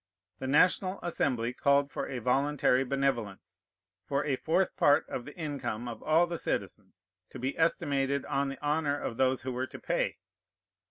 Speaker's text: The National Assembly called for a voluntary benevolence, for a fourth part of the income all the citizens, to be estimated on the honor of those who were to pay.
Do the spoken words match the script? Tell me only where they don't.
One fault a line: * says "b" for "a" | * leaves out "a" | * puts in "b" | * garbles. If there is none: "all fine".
* puts in "of"